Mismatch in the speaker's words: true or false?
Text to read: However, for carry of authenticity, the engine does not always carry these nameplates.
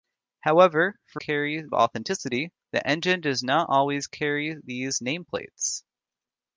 false